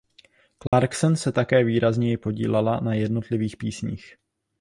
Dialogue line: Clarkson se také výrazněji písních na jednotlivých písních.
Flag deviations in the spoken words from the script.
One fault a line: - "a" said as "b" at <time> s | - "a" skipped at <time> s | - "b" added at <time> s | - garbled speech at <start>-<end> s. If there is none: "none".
- "písních" said as "podílela" at 2.2 s